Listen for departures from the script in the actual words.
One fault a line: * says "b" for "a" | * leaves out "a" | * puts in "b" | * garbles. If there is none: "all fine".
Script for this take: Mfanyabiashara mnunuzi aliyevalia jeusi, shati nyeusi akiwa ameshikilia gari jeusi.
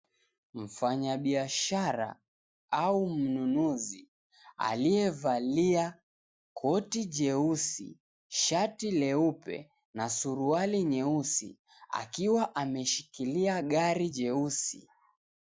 * puts in "au"
* puts in "koti"
* puts in "leupe na suruali"